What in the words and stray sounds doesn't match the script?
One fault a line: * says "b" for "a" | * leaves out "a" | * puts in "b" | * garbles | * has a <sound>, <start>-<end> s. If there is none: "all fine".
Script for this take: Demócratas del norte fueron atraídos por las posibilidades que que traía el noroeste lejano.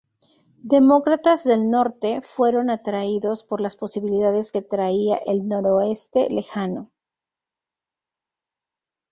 * leaves out "que"